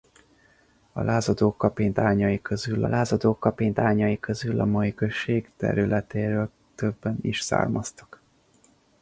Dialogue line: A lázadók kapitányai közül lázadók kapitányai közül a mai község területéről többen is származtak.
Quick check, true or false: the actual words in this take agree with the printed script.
true